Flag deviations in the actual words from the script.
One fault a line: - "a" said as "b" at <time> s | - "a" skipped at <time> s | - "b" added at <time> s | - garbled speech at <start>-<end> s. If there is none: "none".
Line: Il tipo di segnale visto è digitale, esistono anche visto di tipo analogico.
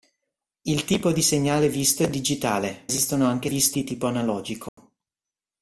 none